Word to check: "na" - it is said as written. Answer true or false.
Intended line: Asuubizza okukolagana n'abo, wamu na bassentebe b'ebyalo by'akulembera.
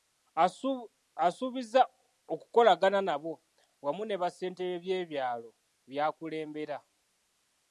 false